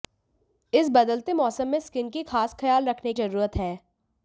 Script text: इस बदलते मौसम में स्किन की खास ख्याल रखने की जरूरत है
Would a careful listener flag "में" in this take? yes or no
no